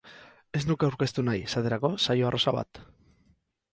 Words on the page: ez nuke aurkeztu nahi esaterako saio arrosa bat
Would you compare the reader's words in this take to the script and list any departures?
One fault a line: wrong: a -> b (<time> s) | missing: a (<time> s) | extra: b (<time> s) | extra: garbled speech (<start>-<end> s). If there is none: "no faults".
no faults